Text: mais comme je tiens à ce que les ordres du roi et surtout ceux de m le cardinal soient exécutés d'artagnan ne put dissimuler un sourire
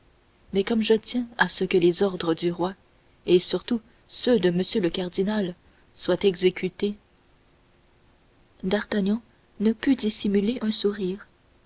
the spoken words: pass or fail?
pass